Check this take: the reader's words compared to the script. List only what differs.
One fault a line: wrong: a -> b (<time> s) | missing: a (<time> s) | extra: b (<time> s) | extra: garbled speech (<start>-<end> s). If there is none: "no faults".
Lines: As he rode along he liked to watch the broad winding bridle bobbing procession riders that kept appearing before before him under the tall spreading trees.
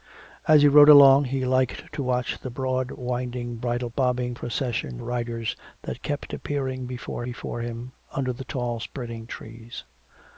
no faults